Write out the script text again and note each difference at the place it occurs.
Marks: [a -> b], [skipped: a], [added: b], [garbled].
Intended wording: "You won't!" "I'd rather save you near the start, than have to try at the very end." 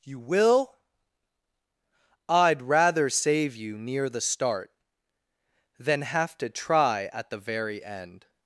"You [won't!" -> will] "I'd rather save you near the start, than have to try at the very end."